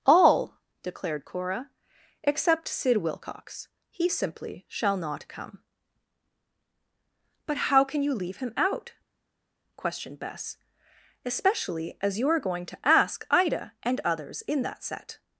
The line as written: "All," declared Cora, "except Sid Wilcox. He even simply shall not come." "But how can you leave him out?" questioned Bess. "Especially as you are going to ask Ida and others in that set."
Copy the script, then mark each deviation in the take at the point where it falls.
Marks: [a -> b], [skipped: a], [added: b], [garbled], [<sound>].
"All," declared Cora, "except Sid Wilcox. He [skipped: even] simply shall not come." "But how can you leave him out?" questioned Bess. "Especially as you are going to ask Ida and others in that set."